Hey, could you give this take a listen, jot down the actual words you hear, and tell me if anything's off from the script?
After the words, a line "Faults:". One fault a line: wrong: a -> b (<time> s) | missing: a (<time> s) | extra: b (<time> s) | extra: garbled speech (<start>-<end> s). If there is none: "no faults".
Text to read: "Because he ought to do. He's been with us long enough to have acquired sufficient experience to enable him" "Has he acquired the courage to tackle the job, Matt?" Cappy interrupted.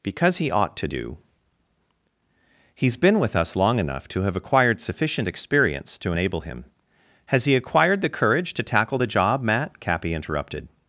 "Because he ought to do. He's been with us long enough to have acquired sufficient experience to enable him" "Has he acquired the courage to tackle the job, Matt?" Cappy interrupted.
Faults:
no faults